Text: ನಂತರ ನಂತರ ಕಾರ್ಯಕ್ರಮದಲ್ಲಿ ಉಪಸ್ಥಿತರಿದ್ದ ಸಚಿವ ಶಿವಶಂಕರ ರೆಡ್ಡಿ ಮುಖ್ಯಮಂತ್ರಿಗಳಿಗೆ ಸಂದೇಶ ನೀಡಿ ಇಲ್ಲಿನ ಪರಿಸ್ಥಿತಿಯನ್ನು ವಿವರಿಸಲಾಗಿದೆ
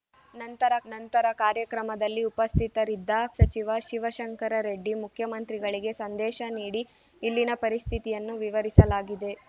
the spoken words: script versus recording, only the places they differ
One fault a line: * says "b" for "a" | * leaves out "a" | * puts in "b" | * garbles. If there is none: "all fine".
all fine